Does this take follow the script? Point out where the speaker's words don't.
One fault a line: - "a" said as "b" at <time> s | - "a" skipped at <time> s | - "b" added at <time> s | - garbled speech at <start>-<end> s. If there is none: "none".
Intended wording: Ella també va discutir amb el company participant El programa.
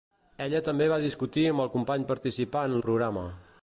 none